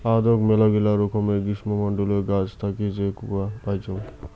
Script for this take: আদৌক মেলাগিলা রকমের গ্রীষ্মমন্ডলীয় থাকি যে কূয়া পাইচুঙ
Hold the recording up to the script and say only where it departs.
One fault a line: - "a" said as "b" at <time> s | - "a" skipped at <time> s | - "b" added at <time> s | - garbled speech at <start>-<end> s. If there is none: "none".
- "গাছ" added at 2.3 s